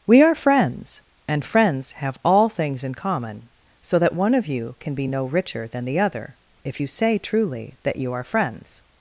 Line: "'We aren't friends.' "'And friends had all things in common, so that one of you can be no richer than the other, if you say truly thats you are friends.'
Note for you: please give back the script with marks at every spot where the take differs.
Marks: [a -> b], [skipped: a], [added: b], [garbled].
"'We [aren't -> are] friends.' "'And friends [had -> have] all things in common, so that one of you can be no richer than the other, if you say truly [thats -> that] you are friends.'